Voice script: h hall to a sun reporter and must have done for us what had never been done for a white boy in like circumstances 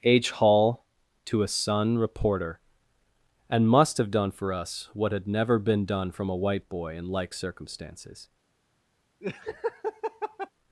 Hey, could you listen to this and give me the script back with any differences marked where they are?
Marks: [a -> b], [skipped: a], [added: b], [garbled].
h hall to a sun reporter and must have done for us what had never been done [for -> from] a white boy in like circumstances